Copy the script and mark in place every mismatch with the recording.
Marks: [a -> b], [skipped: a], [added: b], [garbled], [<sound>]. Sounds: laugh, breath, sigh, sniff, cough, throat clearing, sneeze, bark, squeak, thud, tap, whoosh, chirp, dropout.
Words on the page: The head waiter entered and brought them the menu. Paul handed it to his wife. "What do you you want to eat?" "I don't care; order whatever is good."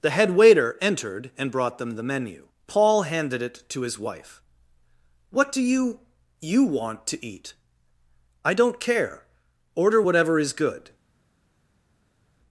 The head waiter entered and brought them the menu. Paul handed it to his wife. "What do you you want to eat?" "I don't care; order whatever is good."